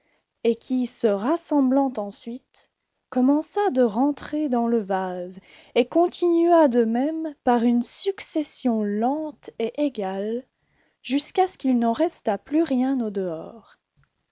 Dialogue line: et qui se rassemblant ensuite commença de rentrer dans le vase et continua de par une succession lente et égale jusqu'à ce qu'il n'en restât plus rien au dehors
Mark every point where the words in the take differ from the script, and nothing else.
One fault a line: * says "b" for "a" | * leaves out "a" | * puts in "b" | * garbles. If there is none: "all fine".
* puts in "même"